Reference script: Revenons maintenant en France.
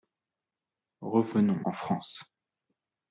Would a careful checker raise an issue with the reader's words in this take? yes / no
yes